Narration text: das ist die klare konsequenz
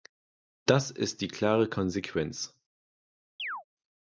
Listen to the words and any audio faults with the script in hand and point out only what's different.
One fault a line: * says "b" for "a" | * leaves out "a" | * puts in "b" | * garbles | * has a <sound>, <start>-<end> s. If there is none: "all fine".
* has a chirp, 3.4-3.6 s